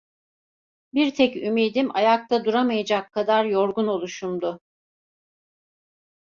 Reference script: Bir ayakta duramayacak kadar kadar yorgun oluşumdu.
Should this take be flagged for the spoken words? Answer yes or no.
yes